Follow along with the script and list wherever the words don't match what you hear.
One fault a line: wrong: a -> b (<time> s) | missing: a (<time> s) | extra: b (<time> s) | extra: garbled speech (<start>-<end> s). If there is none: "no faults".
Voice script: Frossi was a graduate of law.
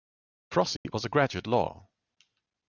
missing: of (1.5 s)